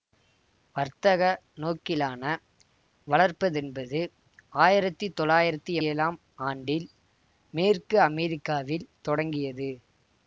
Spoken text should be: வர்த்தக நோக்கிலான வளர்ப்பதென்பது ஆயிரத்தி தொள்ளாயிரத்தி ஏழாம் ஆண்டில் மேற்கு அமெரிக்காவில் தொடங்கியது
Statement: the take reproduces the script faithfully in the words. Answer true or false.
true